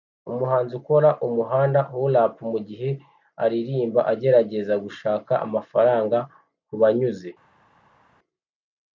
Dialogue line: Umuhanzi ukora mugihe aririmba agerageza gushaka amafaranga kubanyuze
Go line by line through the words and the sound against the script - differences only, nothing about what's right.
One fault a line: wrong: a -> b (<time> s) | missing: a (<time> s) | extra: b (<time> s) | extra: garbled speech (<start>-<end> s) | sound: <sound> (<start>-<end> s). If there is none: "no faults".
extra: umuhanda hula hop (1.3 s)